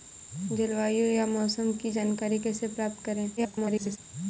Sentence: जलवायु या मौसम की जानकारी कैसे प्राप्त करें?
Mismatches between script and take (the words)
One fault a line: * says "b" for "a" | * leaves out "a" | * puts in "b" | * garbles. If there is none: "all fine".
* garbles